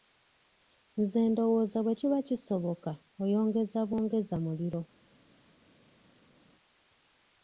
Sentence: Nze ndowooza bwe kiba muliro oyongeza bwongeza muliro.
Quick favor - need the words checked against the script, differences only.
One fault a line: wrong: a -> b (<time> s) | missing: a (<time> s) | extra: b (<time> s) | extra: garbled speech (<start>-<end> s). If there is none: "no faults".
wrong: muliro -> kisoboka (2.3 s)